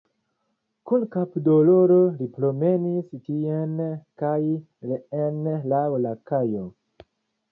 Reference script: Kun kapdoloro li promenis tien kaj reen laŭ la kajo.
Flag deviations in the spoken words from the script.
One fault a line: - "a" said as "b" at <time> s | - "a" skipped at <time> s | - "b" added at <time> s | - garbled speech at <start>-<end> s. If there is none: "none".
none